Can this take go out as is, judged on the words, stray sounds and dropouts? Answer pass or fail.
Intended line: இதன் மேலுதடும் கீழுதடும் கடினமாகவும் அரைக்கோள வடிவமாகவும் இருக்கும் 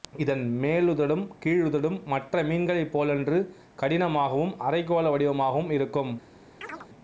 fail